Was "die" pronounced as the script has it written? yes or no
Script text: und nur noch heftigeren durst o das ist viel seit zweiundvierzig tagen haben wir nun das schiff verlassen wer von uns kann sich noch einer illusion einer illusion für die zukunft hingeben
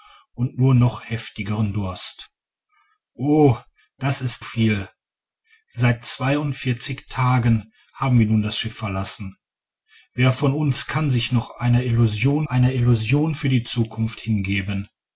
yes